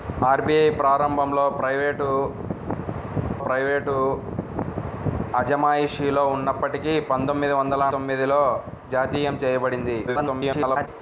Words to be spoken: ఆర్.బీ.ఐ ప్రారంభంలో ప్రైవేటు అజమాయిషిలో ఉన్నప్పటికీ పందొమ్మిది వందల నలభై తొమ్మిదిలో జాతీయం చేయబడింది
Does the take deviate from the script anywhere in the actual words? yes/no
yes